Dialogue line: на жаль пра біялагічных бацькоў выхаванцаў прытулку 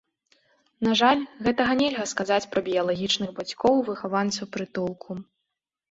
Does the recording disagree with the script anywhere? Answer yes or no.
yes